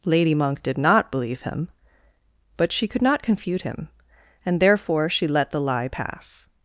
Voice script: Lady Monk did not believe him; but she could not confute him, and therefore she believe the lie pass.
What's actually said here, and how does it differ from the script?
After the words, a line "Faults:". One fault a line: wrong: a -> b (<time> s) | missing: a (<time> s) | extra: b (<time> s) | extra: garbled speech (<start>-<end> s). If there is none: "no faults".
Lady Monk did not believe him; but she could not confute him, and therefore she let the lie pass.
Faults:
wrong: believe -> let (5.3 s)